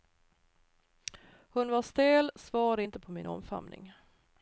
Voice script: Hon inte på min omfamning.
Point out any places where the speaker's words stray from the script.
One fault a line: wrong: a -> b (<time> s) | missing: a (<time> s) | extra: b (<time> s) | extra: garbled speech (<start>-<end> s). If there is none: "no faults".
extra: var stel svarade (1.7 s)